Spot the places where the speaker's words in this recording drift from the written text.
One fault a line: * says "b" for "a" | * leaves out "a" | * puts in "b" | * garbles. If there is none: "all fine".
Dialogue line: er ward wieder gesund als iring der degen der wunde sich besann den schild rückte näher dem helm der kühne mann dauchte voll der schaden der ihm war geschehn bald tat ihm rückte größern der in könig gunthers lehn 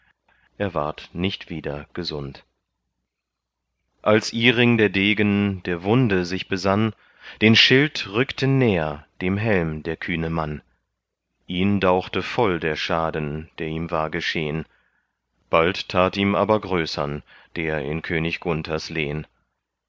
* puts in "nicht"
* puts in "ihn"
* says "aber" for "rückte"